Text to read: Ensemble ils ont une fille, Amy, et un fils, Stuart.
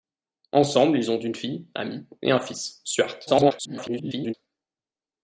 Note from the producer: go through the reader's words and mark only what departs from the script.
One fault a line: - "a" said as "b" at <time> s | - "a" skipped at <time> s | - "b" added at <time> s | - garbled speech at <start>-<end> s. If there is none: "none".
- garbled speech at 3.3-4.3 s